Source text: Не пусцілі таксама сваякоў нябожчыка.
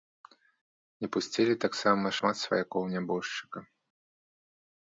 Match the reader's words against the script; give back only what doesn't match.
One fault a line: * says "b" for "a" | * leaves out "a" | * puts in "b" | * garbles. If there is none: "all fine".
* puts in "шмат"